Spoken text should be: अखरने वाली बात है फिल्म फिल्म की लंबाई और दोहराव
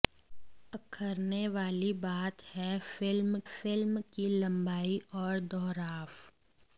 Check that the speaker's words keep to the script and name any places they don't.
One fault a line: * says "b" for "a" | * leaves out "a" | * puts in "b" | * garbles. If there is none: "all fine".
all fine